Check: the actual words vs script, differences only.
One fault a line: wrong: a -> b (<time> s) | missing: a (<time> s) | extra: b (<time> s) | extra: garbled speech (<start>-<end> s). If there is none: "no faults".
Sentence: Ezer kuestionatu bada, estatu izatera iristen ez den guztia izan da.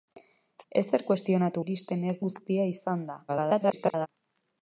missing: bada estatu izatera (1.6 s)
missing: den (2.2 s)
extra: garbled speech (3.3-4.1 s)